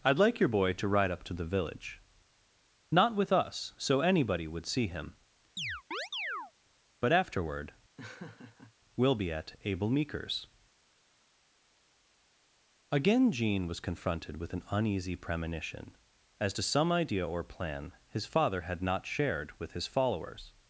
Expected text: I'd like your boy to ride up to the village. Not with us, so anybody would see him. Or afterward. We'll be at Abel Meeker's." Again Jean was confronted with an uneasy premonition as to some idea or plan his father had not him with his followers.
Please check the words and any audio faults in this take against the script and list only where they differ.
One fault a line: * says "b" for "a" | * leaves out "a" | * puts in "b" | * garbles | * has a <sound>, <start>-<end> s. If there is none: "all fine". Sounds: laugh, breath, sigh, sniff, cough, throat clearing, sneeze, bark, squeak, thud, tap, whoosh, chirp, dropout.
* has a chirp, 5.6-6.5 s
* says "But" for "Or"
* has a laugh, 8.0-8.7 s
* says "shared" for "him"